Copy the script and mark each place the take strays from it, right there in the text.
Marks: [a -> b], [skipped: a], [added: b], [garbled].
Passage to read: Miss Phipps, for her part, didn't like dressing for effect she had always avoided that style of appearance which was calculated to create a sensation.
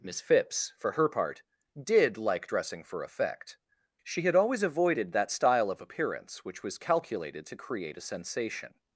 Miss Phipps, for her part, [didn't -> did] like dressing for effect she had always avoided that style of appearance which was calculated to create a sensation.